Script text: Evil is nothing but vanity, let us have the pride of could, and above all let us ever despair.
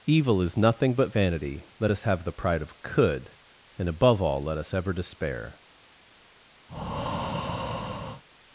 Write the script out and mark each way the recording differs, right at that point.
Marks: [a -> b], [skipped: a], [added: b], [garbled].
Evil is nothing but vanity, let us have the pride of could, and above all let us ever despair.